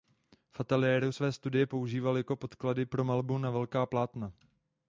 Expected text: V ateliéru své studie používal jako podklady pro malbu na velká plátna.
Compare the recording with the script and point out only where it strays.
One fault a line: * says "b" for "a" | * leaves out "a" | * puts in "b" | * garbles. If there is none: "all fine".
all fine